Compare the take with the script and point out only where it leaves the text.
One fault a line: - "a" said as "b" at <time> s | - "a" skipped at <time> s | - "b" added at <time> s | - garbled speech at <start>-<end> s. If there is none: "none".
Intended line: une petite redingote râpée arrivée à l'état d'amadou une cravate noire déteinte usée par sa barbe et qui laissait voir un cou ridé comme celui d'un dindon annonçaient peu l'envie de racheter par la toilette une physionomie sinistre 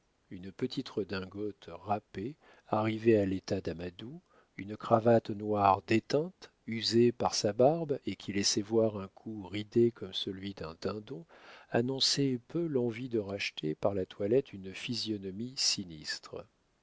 none